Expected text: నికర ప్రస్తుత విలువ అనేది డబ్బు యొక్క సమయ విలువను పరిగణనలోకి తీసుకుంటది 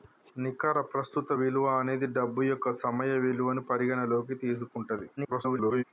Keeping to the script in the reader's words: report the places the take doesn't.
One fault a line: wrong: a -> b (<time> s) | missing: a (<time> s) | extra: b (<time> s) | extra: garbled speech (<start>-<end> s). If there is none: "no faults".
extra: garbled speech (5.2-5.8 s)